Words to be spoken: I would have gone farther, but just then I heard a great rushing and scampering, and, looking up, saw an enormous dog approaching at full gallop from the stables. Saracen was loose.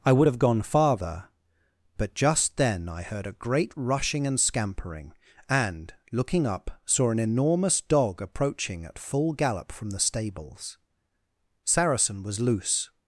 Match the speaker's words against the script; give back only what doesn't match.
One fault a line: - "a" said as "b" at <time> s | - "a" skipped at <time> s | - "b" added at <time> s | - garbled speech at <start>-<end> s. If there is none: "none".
none